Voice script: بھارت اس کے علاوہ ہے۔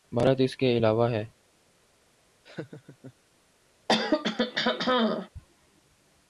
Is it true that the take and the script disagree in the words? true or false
false